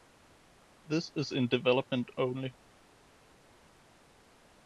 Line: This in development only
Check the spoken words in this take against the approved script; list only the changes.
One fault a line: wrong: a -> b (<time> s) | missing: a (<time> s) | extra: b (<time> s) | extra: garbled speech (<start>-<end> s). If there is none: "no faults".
extra: is (1.1 s)